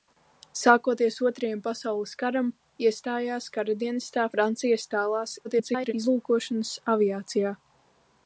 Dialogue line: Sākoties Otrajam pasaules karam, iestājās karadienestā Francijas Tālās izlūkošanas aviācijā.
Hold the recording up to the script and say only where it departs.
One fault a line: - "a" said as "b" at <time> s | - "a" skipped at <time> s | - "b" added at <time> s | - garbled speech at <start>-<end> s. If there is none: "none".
- garbled speech at 5.4-5.9 s